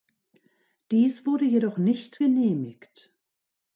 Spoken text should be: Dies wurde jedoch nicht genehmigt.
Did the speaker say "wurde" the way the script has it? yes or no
yes